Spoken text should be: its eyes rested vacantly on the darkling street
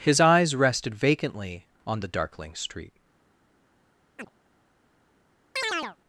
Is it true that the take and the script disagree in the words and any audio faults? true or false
true